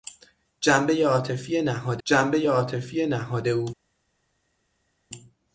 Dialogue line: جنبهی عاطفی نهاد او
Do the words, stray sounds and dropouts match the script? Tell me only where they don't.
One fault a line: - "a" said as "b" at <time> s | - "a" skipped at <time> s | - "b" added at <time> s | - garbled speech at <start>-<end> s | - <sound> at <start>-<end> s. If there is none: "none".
- "جنبهی عاطفی نهاد" added at 2.0 s